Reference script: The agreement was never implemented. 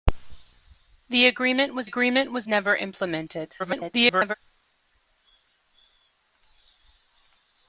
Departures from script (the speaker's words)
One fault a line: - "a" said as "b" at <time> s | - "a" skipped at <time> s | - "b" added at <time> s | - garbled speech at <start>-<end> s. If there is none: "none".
- "agreement was" added at 1.8 s
- garbled speech at 3.6-4.3 s